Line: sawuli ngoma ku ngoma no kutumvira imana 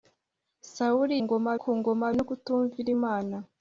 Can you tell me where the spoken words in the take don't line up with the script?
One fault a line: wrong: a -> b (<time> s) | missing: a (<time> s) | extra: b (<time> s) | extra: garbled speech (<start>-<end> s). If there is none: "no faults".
no faults